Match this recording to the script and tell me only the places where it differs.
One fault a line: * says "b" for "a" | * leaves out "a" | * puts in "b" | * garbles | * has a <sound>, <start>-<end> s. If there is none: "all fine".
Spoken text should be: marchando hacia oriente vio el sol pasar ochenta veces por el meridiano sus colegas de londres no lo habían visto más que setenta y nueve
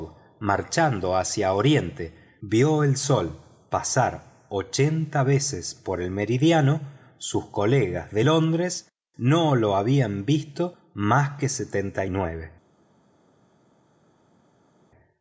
all fine